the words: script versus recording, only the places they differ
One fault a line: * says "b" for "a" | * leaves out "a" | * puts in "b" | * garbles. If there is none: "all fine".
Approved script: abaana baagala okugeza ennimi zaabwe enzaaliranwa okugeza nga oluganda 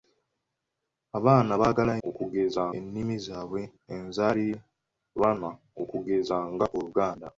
all fine